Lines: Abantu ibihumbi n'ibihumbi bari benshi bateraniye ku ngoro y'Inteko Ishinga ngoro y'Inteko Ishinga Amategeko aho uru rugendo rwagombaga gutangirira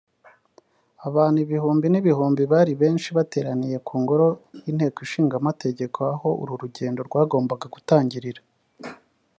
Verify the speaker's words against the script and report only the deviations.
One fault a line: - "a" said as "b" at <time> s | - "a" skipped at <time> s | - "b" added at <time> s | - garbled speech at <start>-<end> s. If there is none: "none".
- "ngoro y'Inteko Ishinga" skipped at 5.3 s